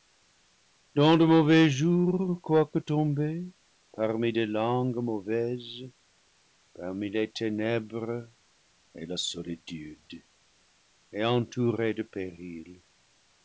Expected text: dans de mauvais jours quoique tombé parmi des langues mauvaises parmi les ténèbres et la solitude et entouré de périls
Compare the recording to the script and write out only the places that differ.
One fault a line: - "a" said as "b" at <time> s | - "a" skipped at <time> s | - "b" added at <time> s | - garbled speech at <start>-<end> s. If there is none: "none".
none